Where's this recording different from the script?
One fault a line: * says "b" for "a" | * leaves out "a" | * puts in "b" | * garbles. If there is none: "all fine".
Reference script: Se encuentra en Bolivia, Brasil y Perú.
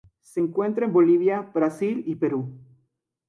all fine